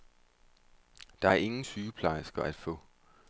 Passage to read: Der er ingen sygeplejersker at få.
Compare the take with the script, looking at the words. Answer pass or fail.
pass